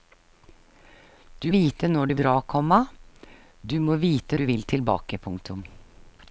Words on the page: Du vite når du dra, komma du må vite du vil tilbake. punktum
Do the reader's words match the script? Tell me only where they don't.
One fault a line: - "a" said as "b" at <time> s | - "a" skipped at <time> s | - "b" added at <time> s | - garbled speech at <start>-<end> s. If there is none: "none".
none